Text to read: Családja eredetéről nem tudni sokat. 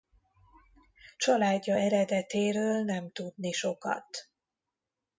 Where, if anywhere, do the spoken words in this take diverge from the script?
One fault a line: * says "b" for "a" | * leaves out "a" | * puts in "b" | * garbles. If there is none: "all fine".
all fine